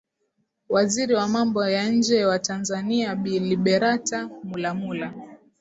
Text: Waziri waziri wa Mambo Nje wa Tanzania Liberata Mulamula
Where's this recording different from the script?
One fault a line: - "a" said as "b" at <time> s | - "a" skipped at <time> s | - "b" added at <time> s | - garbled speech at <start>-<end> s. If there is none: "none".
- "waziri" skipped at 1.1 s
- "ya" added at 1.7 s
- "Bi" added at 3.1 s